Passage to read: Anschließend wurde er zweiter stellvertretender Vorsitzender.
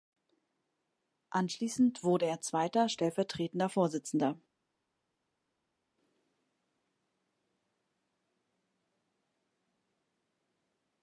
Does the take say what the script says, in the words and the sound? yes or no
yes